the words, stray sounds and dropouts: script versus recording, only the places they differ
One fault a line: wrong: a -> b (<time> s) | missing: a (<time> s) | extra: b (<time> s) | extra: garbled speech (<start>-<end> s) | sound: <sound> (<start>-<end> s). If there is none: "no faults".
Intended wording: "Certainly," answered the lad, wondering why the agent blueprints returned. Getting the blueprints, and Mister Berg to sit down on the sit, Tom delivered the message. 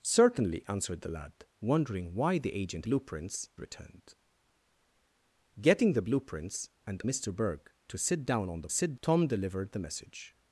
no faults